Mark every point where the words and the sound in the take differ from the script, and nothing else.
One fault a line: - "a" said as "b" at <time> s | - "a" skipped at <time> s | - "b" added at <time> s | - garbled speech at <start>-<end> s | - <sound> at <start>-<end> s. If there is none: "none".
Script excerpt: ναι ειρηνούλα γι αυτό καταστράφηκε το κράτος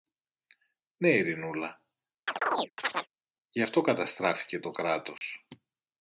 - chirp at 2.3-3.1 s
- dropout at 5.2-5.2 s